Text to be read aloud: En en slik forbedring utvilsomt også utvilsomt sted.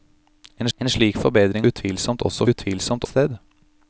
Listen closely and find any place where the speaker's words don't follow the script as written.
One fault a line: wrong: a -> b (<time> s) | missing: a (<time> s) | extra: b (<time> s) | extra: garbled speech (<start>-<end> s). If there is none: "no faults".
no faults